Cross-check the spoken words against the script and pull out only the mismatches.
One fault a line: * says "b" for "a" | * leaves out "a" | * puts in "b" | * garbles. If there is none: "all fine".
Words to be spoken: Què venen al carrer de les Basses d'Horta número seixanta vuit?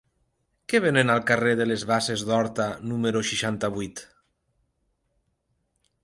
all fine